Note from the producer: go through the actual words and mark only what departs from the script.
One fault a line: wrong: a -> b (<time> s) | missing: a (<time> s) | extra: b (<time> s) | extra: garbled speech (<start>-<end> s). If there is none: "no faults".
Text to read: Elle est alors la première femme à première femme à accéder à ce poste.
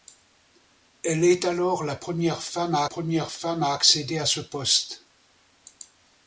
no faults